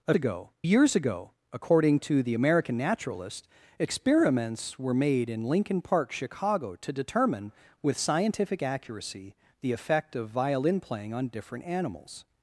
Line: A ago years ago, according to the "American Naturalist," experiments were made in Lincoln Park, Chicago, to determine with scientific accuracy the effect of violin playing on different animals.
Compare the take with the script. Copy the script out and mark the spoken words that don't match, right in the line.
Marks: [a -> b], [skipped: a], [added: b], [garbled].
A ago years ago, according to the "American Naturalist," experiments were made in Lincoln Park, Chicago, to determine with scientific accuracy the effect of violin playing on different animals.